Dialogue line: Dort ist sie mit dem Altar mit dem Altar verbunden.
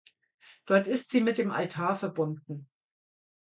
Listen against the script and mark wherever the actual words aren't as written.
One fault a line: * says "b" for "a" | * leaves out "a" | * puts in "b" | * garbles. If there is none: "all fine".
* leaves out "mit dem Altar"